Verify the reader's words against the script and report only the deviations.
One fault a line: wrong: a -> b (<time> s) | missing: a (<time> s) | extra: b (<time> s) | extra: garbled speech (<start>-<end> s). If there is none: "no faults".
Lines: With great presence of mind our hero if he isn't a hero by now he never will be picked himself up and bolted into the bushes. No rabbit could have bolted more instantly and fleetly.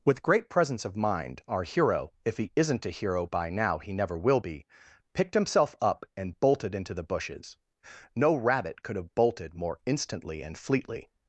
no faults